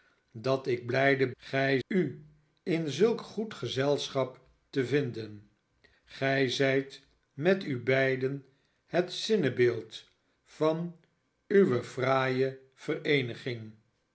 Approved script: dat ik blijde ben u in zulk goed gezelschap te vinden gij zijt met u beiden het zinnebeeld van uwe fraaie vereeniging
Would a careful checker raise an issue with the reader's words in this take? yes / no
yes